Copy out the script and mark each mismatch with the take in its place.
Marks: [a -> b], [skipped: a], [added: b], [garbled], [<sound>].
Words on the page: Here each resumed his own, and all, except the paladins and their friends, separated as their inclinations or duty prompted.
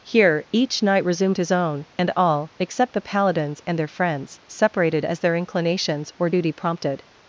Here each [added: knight] resumed his own, and all, except the paladins and their friends, separated as their inclinations or duty prompted.